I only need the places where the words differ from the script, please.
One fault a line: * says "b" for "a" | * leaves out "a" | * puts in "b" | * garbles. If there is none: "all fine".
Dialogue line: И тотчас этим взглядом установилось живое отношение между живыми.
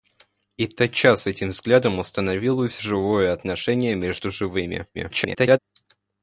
* garbles